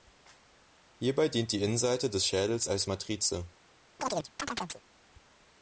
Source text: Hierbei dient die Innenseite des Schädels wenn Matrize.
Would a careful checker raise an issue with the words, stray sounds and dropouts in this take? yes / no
yes